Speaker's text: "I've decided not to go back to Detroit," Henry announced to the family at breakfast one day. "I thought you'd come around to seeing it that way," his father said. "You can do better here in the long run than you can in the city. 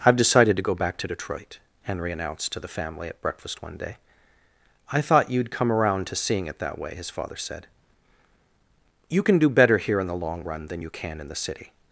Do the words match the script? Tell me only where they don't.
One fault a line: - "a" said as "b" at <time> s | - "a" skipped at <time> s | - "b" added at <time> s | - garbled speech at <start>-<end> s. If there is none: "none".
- "not" skipped at 0.6 s